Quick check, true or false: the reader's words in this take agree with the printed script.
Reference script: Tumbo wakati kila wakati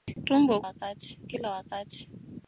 true